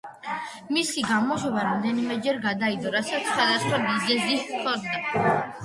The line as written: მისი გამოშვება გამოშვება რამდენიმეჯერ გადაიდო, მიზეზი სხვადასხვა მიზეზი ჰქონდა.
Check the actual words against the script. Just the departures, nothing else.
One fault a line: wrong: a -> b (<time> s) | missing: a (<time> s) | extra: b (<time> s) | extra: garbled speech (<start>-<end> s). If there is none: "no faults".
missing: გამოშვება (1.6 s)
wrong: მიზეზი -> რასაც (2.9 s)